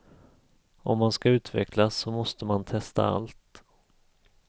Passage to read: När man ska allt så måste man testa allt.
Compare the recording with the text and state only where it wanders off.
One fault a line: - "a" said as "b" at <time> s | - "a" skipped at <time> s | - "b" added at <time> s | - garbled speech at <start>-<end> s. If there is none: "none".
- "När" said as "Om" at 0.8 s
- "allt" said as "utvecklas" at 1.3 s